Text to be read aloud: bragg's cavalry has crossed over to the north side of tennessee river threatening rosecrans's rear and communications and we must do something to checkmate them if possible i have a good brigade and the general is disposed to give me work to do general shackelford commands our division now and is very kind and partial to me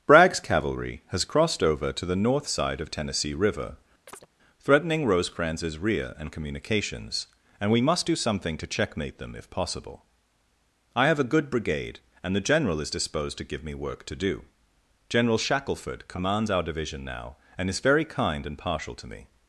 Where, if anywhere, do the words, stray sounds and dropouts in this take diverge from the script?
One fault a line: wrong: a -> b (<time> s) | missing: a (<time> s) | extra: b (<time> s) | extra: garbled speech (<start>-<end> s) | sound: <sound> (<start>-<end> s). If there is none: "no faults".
sound: chirp (4.1-4.3 s)